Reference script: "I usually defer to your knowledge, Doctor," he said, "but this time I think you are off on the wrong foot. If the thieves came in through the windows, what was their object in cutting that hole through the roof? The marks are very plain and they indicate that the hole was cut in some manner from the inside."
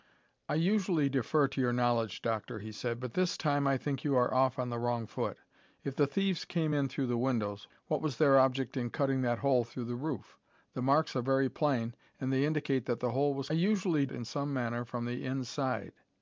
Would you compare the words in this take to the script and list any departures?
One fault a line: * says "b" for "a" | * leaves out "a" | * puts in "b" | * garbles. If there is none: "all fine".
* says "usually" for "cut"